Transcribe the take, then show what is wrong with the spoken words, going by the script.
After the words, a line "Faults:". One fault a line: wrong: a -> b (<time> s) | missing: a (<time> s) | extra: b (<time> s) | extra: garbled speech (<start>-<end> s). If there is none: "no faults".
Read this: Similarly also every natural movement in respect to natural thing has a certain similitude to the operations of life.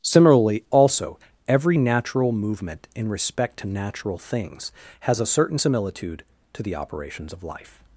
Similarly also every natural movement in respect to natural things has a certain similitude to the operations of life.
Faults:
wrong: thing -> things (4.2 s)